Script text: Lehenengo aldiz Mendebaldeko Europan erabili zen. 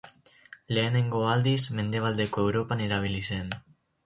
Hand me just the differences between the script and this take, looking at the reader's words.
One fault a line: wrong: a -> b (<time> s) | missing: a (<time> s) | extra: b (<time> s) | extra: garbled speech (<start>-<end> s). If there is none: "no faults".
no faults